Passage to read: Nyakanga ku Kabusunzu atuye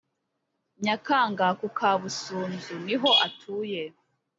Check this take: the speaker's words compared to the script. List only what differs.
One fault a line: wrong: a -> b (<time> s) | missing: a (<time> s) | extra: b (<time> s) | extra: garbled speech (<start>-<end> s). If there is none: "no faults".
extra: niho (2.9 s)